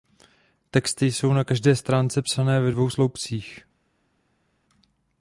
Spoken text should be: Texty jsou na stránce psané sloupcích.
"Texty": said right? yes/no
yes